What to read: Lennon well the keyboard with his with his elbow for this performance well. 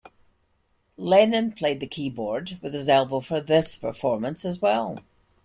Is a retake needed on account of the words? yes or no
yes